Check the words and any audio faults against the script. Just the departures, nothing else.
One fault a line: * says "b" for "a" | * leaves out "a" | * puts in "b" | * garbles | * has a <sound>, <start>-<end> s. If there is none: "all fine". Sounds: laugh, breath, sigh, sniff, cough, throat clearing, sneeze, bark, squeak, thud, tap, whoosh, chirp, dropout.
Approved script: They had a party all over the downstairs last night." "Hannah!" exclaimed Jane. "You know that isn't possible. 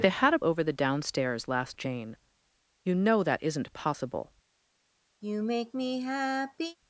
* leaves out "party all"
* leaves out "night Hannah exclaimed"
* has a sigh, 5.2-6.8 s